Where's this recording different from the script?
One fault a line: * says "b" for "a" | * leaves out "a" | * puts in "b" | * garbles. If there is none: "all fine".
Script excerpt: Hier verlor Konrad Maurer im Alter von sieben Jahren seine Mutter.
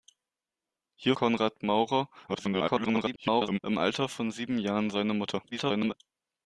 * leaves out "verlor"
* garbles
* garbles